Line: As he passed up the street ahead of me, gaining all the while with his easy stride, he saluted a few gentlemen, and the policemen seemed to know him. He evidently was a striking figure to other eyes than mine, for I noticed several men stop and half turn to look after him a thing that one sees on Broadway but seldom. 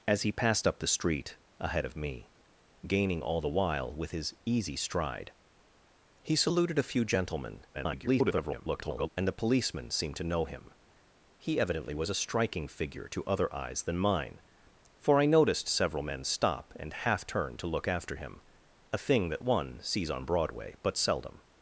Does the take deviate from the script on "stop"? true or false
false